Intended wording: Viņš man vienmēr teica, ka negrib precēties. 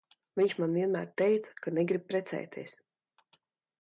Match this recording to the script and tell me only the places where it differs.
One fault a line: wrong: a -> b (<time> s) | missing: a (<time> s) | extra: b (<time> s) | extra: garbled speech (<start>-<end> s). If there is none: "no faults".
no faults